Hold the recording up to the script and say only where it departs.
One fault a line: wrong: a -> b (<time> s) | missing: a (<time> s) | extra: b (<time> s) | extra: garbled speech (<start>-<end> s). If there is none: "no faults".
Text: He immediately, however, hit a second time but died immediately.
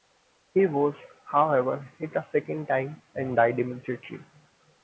wrong: immediately -> was (0.7 s)
wrong: but -> and (3.2 s)